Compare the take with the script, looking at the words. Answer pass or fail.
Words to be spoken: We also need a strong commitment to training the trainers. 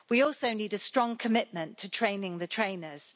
pass